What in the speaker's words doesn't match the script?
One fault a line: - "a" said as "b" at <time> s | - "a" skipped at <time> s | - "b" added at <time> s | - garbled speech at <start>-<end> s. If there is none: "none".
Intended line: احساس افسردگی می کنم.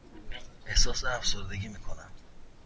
none